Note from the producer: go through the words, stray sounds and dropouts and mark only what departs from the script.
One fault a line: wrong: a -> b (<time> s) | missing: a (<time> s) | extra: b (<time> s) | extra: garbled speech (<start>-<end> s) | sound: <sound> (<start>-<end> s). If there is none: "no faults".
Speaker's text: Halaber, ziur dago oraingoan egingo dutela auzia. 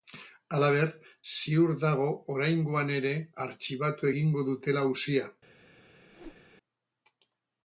extra: ere artxibatu (3.0 s)
sound: whoosh (6.1-6.5 s)